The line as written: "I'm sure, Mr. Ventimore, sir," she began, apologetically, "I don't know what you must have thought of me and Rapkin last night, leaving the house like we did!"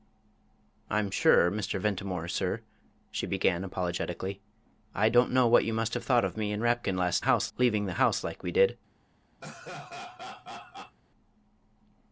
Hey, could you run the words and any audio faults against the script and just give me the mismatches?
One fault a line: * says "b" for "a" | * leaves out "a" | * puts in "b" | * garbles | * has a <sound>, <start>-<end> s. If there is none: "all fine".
* says "house" for "night"
* has a laugh, 9.4-11.0 s